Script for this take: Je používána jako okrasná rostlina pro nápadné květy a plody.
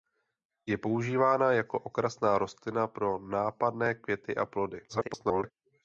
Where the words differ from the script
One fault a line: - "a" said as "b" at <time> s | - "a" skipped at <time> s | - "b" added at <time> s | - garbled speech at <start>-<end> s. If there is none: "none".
- garbled speech at 4.9-5.5 s